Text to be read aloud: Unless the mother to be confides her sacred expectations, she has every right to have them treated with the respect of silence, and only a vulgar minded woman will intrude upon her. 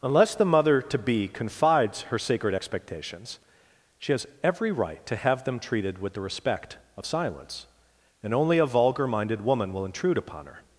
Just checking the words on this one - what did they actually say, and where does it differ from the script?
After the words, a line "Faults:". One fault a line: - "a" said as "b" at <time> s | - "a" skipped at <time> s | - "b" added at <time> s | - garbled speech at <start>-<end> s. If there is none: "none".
Unless the mother to be confides her sacred expectations, she has every right to have them treated with the respect of silence, and only a vulgar minded woman will intrude upon her.
Faults:
none